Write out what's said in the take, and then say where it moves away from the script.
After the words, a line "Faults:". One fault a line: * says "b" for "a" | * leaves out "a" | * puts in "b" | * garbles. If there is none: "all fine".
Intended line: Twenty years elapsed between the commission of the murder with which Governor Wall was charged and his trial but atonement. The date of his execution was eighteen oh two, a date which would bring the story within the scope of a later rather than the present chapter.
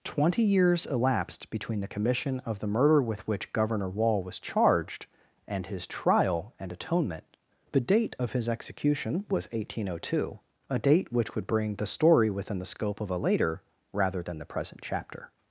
Twenty years elapsed between the commission of the murder with which Governor Wall was charged and his trial and atonement. The date of his execution was eighteen oh two, a date which would bring the story within the scope of a later rather than the present chapter.
Faults:
* says "and" for "but"